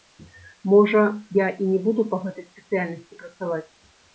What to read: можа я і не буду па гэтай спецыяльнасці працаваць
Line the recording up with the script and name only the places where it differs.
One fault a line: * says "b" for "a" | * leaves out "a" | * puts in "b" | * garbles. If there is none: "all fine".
all fine